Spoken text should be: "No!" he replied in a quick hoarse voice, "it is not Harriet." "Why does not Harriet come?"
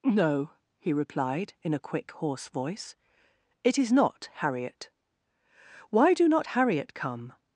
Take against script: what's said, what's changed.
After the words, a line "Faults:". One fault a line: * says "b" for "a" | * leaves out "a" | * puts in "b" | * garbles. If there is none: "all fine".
"No!" he replied in a quick hoarse voice, "it is not Harriet." "Why do not Harriet come?"
Faults:
* says "do" for "does"